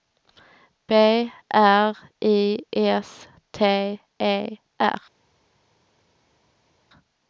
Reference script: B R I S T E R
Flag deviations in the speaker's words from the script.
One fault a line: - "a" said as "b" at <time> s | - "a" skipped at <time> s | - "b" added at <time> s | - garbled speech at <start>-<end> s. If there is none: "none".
none